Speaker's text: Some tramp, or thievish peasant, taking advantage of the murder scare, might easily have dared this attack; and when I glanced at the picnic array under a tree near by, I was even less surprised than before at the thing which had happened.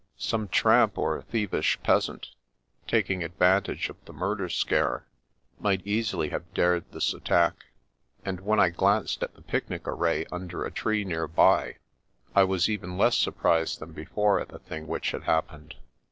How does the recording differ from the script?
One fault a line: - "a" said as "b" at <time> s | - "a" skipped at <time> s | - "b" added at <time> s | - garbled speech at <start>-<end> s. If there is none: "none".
none